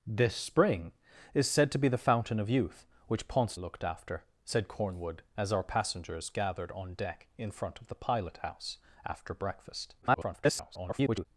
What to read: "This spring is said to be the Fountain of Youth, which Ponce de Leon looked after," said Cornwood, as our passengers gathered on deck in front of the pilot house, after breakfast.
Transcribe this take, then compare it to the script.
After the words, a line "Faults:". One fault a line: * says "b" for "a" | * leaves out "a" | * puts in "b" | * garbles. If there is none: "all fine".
"This spring is said to be the Fountain of Youth, which Ponce looked after," said Cornwood, as our passengers gathered on deck in front of the pilot house, after breakfast. [garbled]
Faults:
* leaves out "de Leon"
* garbles